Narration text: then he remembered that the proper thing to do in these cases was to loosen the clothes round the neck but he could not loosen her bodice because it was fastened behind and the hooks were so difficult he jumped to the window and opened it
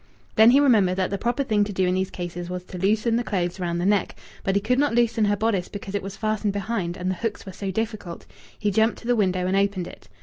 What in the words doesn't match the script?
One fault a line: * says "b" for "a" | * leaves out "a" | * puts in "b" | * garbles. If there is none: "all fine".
all fine